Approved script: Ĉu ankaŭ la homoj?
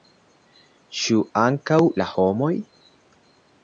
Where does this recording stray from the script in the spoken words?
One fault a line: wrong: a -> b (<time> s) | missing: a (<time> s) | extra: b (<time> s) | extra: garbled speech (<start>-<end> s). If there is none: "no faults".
no faults